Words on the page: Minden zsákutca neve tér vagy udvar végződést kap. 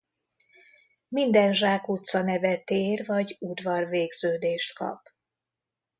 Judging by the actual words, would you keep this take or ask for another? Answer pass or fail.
pass